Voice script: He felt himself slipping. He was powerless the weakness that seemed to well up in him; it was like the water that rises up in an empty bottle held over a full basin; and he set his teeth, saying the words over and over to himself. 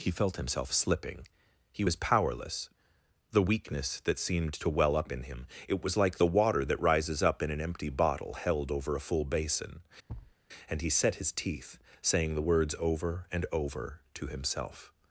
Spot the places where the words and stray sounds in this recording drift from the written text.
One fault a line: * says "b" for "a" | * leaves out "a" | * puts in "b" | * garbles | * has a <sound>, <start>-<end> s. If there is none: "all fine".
* has a thud, 10.1-10.4 s